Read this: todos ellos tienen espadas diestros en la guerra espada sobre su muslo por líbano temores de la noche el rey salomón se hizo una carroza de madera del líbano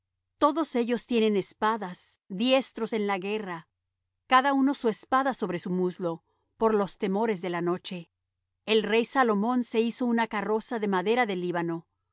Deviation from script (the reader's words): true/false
true